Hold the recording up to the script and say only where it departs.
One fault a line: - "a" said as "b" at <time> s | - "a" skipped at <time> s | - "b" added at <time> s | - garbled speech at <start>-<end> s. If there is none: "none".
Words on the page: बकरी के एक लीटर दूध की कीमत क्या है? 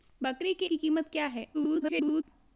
- "एक लीटर दूध" skipped at 0.7 s
- garbled speech at 1.5-2.2 s